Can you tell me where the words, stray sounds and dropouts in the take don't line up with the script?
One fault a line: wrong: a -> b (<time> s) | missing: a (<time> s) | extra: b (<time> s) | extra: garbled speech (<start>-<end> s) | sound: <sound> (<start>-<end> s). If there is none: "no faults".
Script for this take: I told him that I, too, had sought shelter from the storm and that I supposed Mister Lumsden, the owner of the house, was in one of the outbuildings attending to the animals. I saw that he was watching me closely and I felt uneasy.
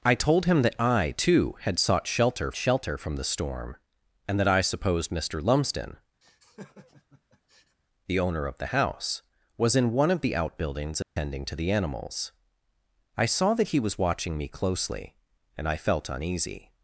extra: shelter (2.6 s)
sound: laugh (6.2-7.8 s)
sound: dropout (11.0-11.2 s)